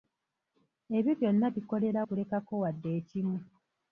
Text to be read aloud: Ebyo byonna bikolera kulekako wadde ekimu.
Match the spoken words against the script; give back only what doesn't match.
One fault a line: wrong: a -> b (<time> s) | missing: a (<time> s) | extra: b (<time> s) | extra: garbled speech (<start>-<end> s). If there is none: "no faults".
no faults